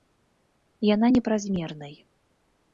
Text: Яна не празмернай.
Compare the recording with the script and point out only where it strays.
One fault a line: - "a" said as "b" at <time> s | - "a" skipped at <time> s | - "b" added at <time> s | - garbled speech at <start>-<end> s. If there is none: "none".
none